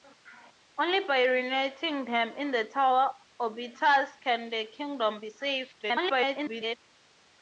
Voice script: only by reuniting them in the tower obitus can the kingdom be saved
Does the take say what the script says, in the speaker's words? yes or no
no